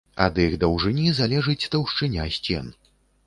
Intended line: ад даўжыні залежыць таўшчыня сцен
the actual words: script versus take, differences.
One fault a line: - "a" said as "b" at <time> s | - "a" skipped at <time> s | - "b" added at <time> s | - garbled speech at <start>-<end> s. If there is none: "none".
- "іх" added at 0.4 s